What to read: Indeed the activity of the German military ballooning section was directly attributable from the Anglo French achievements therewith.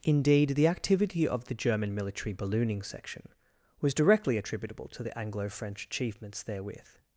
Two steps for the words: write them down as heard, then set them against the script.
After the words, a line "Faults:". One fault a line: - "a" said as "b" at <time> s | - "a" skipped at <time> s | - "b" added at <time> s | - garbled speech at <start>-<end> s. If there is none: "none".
Indeed the activity of the German military ballooning section was directly attributable to the Anglo French achievements therewith.
Faults:
- "from" said as "to" at 4.9 s